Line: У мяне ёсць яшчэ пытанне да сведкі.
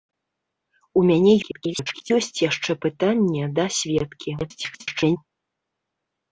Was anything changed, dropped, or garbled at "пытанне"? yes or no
no